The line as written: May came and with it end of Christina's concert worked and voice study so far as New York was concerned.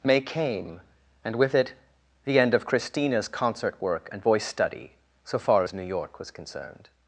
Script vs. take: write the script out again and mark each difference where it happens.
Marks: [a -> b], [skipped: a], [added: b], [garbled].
May came and with it [added: the] end of Christina's concert [worked -> work] and voice study so far as New York was concerned.